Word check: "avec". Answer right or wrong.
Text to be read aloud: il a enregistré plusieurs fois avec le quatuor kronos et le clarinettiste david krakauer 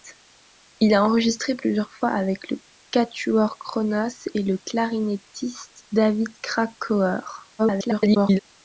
right